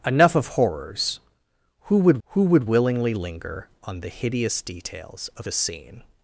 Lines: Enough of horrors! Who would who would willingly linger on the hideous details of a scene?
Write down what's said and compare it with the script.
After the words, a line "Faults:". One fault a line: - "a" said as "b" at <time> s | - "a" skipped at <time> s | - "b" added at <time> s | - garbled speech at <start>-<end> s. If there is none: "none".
Enough of horrors! Who would who would willingly linger on the hideous details of a scene?
Faults:
none